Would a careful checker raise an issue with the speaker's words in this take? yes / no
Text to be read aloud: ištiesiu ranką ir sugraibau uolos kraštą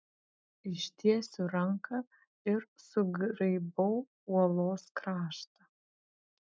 no